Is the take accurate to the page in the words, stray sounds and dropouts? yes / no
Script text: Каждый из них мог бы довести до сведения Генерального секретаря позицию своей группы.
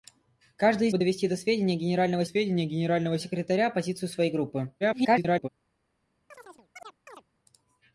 no